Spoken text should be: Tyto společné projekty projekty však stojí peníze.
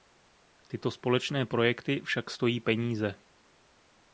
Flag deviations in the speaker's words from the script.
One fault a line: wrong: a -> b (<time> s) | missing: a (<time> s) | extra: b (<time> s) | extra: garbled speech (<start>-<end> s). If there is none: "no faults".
missing: projekty (2.0 s)